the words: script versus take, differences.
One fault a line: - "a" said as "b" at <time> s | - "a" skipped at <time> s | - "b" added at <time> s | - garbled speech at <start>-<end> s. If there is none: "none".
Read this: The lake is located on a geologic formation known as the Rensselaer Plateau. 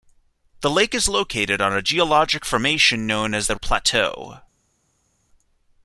- "Rensselaer" skipped at 3.6 s